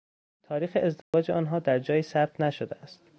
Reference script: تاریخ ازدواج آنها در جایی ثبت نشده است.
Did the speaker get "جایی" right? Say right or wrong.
right